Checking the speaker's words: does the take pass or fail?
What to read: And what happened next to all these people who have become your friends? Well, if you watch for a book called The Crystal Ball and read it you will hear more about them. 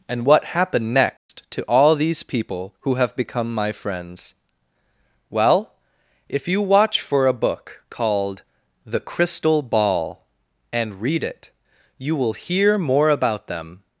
fail